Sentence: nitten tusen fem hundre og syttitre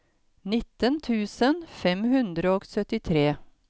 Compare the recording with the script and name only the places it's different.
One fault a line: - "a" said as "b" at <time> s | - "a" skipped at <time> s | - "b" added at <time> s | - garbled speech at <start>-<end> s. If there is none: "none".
none